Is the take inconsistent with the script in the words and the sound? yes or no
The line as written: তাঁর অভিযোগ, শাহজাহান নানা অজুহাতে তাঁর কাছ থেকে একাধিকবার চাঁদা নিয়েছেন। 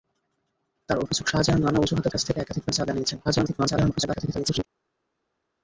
yes